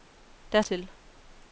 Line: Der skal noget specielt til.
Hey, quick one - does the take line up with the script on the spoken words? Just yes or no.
no